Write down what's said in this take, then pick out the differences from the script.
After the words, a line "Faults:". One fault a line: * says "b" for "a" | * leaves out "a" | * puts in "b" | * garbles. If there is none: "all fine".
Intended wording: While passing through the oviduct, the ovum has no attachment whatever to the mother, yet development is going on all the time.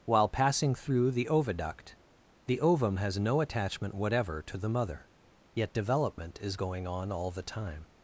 While passing through the oviduct, the ovum has no attachment whatever to the mother, yet development is going on all the time.
Faults:
all fine